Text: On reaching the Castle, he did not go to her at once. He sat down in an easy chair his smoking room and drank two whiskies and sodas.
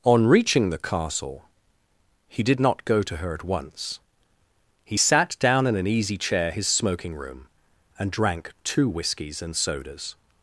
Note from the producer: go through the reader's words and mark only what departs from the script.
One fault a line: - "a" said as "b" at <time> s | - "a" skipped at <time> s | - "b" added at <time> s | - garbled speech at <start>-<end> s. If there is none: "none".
none